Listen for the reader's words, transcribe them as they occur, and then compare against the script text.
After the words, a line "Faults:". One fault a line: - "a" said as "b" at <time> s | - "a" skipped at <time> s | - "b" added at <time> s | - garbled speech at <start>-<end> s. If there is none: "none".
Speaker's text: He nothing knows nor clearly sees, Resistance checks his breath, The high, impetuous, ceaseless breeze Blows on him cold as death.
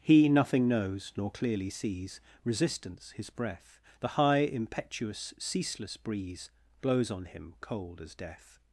He nothing knows nor clearly sees, Resistance his breath, The high, impetuous, ceaseless breeze Blows on him cold as death.
Faults:
- "checks" skipped at 3.1 s